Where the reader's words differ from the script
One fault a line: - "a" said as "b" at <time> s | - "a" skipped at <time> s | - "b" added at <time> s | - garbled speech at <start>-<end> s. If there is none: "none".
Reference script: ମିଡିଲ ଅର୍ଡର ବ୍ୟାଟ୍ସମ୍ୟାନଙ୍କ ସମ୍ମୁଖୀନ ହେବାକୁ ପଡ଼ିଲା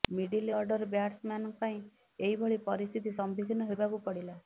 - "ପାଇଁ ଏହିଭଳି ପରିସ୍ଥିତି" added at 1.6 s